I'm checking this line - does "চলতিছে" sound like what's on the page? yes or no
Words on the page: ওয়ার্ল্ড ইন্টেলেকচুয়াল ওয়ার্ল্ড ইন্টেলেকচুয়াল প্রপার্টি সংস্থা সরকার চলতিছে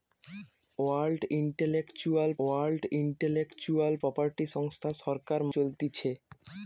yes